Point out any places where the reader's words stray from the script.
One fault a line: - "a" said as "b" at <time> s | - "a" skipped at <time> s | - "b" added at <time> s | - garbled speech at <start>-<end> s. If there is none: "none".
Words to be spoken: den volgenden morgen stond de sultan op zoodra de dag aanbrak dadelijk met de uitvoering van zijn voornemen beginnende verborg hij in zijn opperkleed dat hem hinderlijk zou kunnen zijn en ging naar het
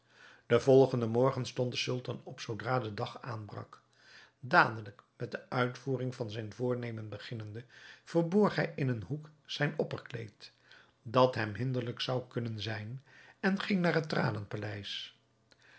- "een hoek" added at 8.9 s